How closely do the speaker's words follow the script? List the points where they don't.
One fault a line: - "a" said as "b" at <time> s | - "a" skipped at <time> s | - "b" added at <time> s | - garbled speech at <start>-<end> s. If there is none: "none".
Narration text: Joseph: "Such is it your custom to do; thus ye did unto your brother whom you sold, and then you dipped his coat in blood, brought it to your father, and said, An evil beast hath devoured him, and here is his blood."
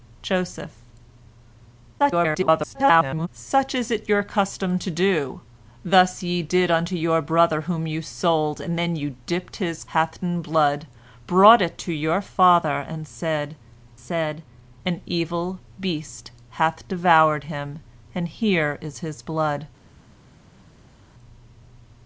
- garbled speech at 2.0-3.3 s
- "coat" said as "hath" at 9.9 s
- "said" added at 14.0 s